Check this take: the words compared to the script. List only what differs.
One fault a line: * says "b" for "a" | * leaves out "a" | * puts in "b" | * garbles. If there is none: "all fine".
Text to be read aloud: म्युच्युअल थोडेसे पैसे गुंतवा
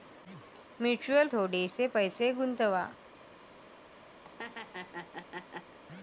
all fine